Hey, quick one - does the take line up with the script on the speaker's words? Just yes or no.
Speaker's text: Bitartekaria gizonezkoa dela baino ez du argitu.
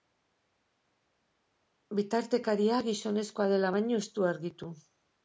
yes